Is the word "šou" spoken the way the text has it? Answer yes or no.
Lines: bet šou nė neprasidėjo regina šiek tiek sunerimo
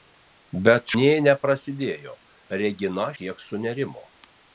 no